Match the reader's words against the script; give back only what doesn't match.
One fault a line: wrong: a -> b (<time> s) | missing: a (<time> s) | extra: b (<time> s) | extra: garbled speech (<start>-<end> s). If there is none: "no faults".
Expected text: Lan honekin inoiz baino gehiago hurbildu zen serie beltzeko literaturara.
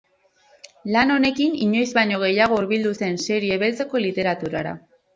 no faults